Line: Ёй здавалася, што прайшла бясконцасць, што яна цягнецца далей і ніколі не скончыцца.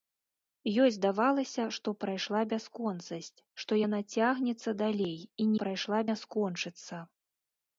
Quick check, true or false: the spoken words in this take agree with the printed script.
false